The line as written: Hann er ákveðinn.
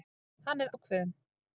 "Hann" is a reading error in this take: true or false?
false